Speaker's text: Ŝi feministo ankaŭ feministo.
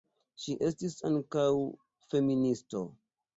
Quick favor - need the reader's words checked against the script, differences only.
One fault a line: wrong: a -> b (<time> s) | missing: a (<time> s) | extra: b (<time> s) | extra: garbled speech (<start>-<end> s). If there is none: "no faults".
wrong: feministo -> estis (0.7 s)